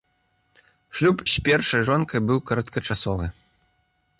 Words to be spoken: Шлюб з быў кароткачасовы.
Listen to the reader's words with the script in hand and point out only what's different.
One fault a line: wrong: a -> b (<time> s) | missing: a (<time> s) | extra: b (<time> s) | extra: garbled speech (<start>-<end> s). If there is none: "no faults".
extra: першай жонкай (1.5 s)